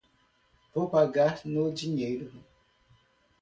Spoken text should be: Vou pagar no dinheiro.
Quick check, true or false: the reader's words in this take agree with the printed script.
true